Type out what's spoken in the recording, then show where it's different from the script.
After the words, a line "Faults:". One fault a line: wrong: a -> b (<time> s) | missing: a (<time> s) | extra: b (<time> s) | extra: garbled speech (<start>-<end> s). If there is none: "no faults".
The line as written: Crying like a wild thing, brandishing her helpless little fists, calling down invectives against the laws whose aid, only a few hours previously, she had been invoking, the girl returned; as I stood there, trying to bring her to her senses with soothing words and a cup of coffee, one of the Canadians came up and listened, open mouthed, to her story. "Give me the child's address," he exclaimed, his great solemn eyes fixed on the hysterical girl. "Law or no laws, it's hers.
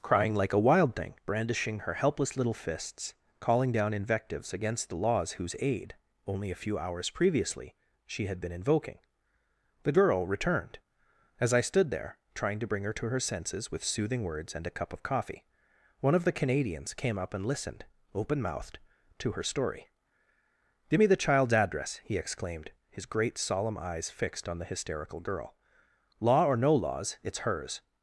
Crying like a wild thing, brandishing her helpless little fists, calling down invectives against the laws whose aid, only a few hours previously, she had been invoking, the girl returned; as I stood there, trying to bring her to her senses with soothing words and a cup of coffee, one of the Canadians came up and listened, open mouthed, to her story. "Give me the child's address," he exclaimed, his great solemn eyes fixed on the hysterical girl. "Law or no laws, it's hers.
Faults:
no faults